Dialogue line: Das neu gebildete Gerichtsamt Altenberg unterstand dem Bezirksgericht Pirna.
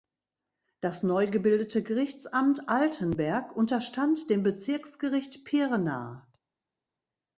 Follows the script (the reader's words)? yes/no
yes